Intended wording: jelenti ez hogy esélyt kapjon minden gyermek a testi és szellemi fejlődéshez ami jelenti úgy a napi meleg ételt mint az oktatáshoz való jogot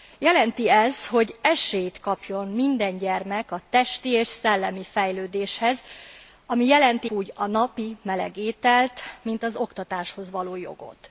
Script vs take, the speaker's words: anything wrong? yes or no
no